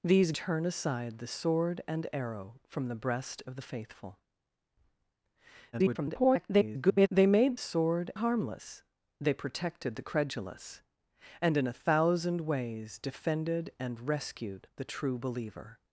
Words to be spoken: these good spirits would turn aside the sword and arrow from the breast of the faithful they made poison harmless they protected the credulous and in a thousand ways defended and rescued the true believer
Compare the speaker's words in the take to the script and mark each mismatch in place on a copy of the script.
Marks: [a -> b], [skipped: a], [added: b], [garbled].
these [skipped: good spirits would] turn aside the sword and arrow from the breast of the faithful [garbled] they made [poison -> sword] harmless they protected the credulous and in a thousand ways defended and rescued the true believer